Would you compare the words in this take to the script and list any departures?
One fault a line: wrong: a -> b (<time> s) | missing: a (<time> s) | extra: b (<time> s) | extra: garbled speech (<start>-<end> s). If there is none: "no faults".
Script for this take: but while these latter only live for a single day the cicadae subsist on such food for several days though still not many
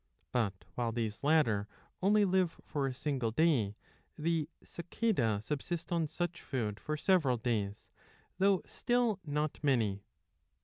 no faults